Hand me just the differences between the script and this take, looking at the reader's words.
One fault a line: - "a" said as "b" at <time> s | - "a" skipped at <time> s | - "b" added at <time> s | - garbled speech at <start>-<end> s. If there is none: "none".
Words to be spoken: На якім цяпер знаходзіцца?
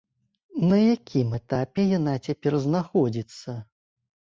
- "этапе яна" added at 1.4 s